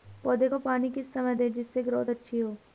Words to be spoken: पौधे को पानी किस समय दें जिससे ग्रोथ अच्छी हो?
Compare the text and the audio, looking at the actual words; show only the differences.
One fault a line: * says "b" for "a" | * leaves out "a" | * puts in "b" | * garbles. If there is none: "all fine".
all fine